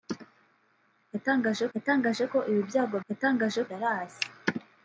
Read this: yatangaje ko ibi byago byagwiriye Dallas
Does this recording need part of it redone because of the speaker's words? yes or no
yes